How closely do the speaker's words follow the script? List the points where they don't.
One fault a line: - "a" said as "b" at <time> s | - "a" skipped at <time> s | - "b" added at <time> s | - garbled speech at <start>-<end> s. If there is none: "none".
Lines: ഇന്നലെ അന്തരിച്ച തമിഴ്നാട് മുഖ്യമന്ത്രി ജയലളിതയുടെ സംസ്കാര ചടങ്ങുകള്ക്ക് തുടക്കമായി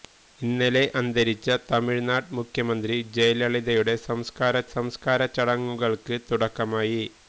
- "സംസ്കാര" added at 4.7 s